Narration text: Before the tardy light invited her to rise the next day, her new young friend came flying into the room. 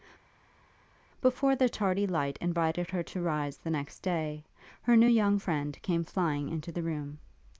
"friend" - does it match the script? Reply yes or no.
yes